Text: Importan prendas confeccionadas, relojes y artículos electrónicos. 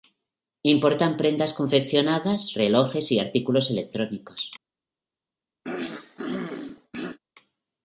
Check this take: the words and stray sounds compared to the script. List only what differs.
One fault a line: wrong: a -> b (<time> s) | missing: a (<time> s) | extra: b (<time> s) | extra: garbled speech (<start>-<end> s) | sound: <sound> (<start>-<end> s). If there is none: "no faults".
sound: throat clearing (5.6-7.2 s)